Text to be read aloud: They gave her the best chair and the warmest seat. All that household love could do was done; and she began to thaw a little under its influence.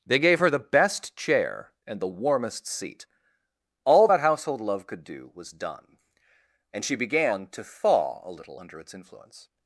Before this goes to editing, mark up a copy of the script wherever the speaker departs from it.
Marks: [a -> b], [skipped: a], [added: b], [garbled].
They gave her the best chair and the warmest seat. All that household love could do was done; and she began to thaw a little under its influence.